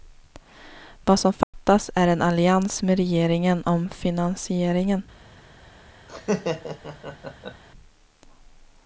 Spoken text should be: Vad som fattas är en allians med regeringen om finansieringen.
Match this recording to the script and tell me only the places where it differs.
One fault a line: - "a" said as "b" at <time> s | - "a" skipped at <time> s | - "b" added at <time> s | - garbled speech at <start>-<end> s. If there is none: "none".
none